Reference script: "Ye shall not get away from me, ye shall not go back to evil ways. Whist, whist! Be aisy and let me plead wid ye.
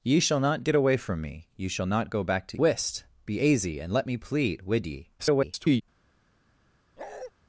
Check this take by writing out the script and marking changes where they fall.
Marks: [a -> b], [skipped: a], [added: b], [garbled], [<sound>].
"Ye shall not get away from me, ye shall not go back to [skipped: evil ways. Whist,] whist! Be aisy and let me plead wid ye. [garbled] [bark]